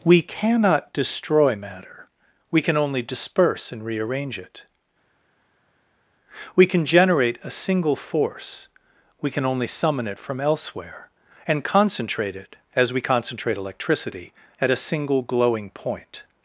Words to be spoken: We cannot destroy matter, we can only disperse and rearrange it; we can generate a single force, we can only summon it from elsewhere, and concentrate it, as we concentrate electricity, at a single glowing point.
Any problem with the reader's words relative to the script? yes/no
no